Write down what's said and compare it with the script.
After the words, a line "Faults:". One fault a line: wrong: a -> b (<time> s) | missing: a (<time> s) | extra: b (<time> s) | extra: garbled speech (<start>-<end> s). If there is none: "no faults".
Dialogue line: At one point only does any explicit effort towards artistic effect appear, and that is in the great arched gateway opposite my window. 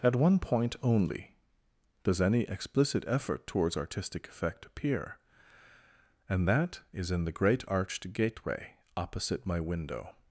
At one point only does any explicit effort towards artistic effect appear, and that is in the great arched gateway opposite my window.
Faults:
no faults